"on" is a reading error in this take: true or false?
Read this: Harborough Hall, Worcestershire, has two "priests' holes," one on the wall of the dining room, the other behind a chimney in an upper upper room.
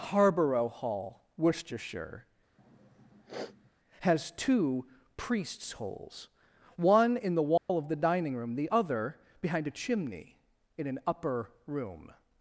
true